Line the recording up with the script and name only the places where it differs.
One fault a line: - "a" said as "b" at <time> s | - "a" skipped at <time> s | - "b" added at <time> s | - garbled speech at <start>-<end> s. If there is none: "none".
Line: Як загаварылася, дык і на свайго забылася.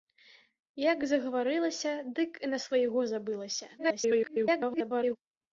- garbled speech at 3.8-5.2 s